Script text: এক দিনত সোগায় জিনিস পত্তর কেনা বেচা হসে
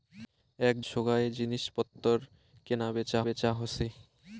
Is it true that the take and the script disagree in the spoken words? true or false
true